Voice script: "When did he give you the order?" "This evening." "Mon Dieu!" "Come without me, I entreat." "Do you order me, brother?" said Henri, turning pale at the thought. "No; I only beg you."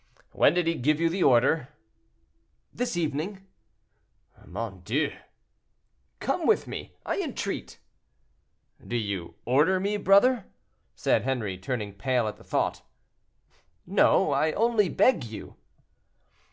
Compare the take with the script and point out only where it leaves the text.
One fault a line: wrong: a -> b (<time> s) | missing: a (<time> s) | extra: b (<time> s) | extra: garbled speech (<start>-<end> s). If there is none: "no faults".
wrong: without -> with (6.5 s)